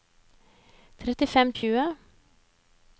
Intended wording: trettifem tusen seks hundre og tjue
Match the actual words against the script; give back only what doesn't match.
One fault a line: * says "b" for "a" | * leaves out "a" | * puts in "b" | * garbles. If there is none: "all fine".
* leaves out "tusen seks hundre"